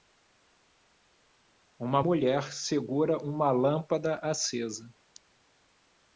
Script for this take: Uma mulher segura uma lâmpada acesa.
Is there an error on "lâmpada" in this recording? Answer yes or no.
no